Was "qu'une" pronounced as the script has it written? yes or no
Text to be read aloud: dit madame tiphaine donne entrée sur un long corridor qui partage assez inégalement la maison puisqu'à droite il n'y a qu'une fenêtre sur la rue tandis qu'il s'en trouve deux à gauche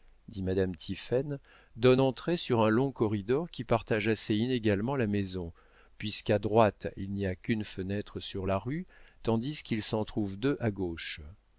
yes